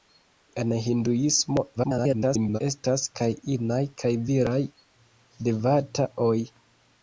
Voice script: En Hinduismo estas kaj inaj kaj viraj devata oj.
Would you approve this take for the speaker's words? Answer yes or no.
no